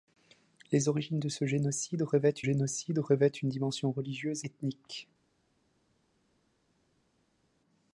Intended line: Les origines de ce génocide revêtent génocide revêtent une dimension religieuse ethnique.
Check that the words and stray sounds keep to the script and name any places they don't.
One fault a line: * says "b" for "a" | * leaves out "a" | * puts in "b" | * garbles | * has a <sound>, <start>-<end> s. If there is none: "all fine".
all fine